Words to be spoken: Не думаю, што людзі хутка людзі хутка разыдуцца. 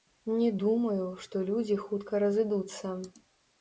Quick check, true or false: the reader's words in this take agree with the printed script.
false